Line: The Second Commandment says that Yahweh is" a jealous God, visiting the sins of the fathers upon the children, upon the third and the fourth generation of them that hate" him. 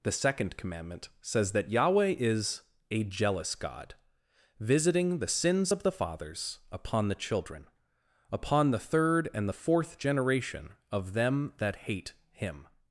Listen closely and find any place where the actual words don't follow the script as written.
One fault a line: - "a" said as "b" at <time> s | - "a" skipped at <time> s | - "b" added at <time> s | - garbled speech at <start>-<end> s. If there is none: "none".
none